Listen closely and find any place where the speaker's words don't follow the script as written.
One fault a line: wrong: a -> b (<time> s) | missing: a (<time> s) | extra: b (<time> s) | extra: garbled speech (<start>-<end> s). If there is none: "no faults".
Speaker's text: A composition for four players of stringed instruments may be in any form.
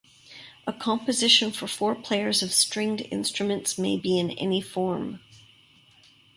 no faults